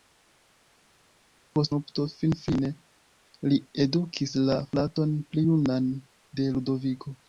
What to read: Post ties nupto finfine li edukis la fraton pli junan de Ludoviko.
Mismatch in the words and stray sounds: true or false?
true